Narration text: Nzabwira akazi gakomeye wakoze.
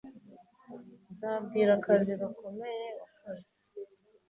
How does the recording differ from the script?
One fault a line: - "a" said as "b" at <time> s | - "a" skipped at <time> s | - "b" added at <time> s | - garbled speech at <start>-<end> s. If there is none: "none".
none